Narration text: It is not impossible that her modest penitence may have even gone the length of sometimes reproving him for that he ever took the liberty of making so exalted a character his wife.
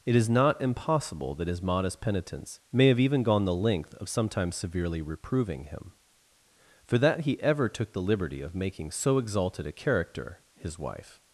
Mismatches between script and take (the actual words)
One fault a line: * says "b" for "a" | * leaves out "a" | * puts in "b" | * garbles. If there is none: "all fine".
* says "his" for "her"
* puts in "severely"